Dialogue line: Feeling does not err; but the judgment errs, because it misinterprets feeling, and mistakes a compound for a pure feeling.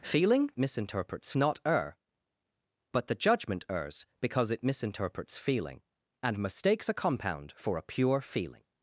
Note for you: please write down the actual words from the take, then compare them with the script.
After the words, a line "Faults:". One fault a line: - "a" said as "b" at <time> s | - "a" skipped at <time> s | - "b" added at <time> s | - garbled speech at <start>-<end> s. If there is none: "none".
Feeling misinterprets not err; but the judgment errs, because it misinterprets feeling, and mistakes a compound for a pure feeling.
Faults:
- "does" said as "misinterprets" at 0.6 s